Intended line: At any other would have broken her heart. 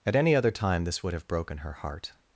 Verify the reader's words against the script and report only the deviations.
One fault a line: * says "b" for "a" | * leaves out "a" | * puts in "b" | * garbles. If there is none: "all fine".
* puts in "time this"